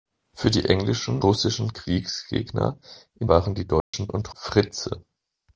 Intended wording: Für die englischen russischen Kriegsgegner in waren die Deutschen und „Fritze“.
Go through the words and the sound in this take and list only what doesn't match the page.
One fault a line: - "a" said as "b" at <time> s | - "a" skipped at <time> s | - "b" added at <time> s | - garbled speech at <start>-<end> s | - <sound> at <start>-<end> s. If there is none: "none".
- dropout at 3.8-3.9 s